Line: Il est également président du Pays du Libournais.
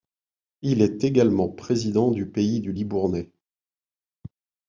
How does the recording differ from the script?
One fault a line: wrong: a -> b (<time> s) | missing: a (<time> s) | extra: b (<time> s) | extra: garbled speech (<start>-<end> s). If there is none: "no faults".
no faults